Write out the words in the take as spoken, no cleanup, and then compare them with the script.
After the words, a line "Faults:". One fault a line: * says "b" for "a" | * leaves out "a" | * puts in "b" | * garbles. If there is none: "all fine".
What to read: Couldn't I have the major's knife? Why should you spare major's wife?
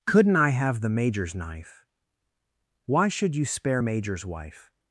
Couldn't I have the major's knife? Why should you spare major's wife?
Faults:
all fine